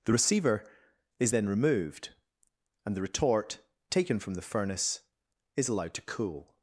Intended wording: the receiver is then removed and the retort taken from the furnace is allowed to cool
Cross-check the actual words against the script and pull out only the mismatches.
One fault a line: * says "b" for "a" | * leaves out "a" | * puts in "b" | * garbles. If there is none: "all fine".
all fine